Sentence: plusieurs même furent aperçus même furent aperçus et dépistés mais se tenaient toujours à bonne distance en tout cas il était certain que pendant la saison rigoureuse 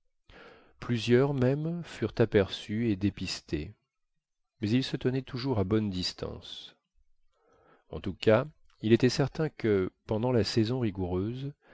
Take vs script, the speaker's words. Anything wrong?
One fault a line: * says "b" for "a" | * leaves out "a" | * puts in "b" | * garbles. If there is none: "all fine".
* leaves out "même furent aperçus"
* puts in "ils"